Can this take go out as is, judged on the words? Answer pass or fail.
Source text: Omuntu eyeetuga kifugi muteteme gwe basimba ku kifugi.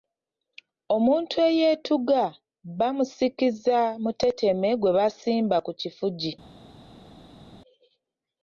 fail